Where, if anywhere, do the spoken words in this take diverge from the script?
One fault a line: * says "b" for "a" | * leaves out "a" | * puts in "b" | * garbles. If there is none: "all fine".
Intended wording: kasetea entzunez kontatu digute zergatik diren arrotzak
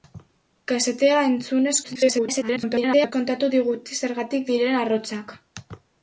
* garbles